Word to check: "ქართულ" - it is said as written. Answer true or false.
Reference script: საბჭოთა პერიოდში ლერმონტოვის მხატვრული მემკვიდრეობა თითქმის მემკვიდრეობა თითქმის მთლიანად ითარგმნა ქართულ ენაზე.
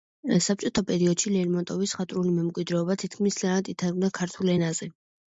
true